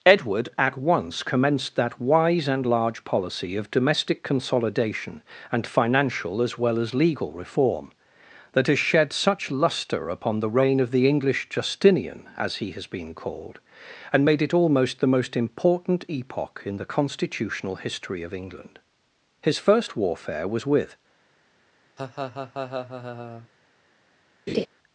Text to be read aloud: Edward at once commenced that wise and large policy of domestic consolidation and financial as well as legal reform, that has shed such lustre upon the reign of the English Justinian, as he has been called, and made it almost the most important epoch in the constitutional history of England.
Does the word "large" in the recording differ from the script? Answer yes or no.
no